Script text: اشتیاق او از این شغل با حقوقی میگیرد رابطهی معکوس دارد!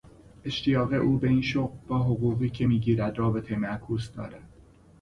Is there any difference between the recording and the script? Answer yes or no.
yes